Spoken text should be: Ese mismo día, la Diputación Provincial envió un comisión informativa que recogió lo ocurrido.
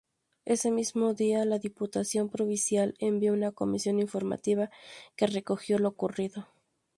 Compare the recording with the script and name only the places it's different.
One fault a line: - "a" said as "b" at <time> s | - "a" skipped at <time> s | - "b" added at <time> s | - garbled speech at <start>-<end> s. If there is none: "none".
- "un" said as "una" at 3.3 s